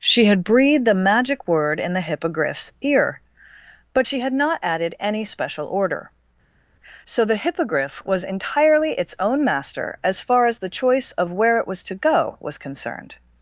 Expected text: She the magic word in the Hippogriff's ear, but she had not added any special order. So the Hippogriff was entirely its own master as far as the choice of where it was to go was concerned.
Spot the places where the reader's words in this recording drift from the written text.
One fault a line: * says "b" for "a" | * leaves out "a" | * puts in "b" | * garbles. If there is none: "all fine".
* puts in "had breathed"